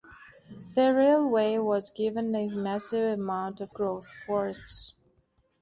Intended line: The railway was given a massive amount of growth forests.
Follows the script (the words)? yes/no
yes